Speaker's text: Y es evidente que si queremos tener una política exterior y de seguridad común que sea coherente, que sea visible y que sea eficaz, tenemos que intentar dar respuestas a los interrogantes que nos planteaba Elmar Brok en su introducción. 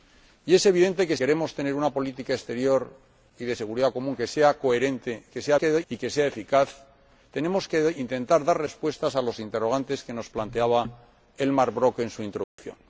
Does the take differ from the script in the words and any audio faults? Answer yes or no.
yes